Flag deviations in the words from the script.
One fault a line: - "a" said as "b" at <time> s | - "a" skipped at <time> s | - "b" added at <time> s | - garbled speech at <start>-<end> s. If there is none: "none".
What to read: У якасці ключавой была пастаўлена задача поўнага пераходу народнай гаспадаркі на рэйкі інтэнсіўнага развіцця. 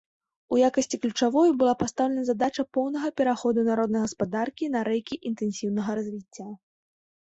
none